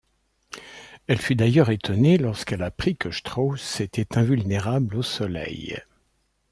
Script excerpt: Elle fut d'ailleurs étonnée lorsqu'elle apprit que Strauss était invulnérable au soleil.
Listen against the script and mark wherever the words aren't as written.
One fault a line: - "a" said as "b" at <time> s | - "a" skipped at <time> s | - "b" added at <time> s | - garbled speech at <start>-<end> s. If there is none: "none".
none